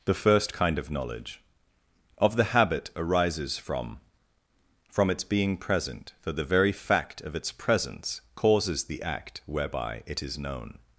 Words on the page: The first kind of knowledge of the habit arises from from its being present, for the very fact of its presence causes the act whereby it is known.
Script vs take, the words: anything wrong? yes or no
no